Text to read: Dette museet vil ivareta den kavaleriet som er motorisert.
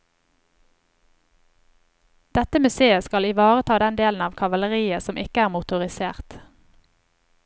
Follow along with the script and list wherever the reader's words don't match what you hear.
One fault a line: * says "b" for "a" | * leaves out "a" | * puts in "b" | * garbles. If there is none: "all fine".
* says "skal" for "vil"
* puts in "delen av"
* puts in "ikke"